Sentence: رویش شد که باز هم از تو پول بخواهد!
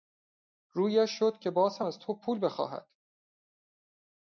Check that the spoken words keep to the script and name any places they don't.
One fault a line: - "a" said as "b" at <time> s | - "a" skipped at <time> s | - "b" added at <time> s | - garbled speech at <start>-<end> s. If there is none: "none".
none